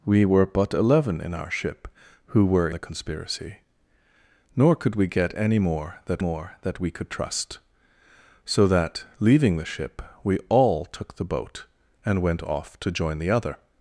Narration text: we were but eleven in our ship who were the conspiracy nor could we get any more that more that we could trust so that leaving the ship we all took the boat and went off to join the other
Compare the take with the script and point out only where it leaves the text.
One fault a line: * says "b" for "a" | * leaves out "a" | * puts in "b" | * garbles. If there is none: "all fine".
all fine